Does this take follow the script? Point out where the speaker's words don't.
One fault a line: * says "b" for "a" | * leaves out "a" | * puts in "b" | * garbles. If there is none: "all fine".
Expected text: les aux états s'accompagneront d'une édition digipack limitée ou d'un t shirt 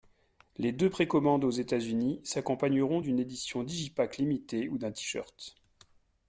* puts in "deux précommandes"
* puts in "unis"